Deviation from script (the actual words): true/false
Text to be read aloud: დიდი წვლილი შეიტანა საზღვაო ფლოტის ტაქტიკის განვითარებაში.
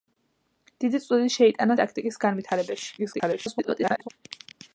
true